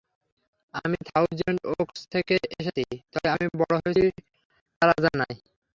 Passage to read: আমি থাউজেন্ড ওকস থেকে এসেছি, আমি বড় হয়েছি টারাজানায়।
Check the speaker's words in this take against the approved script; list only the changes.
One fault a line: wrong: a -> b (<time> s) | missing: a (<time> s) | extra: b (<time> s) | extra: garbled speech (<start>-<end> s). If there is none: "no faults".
extra: তবে (3.1 s)